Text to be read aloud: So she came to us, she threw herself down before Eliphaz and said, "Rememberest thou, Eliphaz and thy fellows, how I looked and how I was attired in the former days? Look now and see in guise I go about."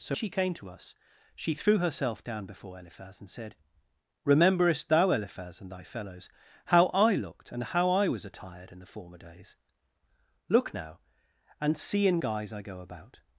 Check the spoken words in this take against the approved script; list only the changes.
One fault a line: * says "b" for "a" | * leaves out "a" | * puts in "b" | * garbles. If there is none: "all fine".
all fine